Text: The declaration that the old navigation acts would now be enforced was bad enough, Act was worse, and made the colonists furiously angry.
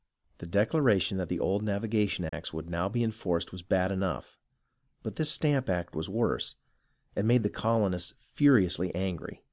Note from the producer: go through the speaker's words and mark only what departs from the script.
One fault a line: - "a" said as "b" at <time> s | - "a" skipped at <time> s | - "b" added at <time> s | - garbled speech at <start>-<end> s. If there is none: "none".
- "but this Stamp" added at 5.0 s